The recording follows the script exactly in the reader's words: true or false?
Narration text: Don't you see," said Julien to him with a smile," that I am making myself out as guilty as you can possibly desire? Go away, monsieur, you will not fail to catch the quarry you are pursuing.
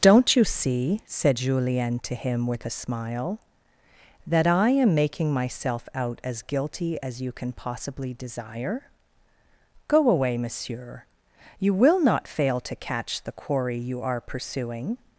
true